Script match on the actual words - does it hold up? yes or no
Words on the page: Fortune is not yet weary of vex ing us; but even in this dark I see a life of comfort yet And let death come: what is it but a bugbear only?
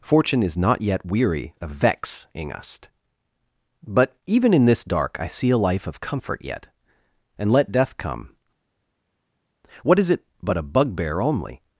yes